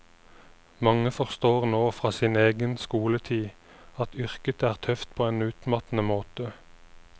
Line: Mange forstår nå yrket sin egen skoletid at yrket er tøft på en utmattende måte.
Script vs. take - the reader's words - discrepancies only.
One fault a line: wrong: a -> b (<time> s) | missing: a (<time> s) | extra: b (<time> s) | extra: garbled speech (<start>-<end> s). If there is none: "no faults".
wrong: yrket -> fra (2.0 s)